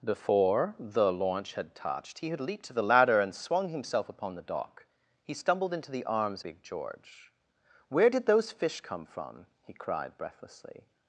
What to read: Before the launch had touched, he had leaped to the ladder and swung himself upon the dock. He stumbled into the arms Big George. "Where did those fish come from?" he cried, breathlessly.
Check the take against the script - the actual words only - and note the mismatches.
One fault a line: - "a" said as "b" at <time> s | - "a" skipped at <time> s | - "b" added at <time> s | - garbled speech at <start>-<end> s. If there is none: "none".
none